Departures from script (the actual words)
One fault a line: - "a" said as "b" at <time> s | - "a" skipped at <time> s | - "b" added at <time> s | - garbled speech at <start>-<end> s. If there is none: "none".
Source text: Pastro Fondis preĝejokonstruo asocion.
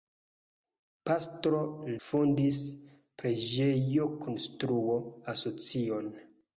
none